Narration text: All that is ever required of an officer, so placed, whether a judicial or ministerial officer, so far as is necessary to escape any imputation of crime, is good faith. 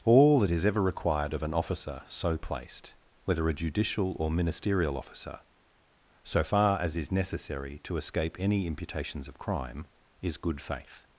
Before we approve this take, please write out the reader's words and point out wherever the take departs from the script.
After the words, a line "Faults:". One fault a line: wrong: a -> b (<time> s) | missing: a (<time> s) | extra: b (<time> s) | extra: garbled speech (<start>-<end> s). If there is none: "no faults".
All that is ever required of an officer, so placed, whether a judicial or ministerial officer, so far as is necessary to escape any imputations of crime, is good faith.
Faults:
wrong: imputation -> imputations (8.7 s)